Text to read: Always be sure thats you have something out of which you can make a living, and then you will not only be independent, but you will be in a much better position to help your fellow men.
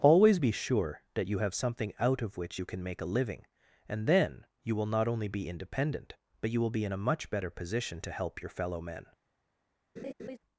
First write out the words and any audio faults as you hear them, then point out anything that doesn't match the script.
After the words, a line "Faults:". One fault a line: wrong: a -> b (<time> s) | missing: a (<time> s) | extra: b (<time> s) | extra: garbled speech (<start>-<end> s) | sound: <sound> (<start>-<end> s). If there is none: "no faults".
Always be sure that you have something out of which you can make a living, and then you will not only be independent, but you will be in a much better position to help your fellow men.
Faults:
wrong: thats -> that (1.1 s)
sound: laugh (10.0-10.4 s)